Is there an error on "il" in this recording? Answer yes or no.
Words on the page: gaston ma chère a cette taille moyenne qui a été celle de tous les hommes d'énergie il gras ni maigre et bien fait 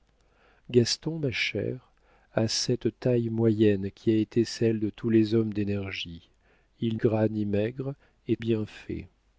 no